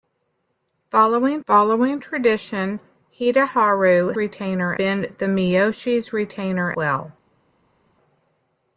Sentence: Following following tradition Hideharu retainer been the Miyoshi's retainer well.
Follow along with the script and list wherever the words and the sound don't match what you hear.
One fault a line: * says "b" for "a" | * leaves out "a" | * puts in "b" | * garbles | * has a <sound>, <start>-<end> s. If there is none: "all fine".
all fine